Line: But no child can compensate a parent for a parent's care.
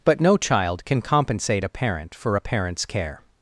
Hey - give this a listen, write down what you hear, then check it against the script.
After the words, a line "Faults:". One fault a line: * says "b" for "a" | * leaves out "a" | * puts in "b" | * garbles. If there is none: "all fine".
But no child can compensate a parent for a parent's care.
Faults:
all fine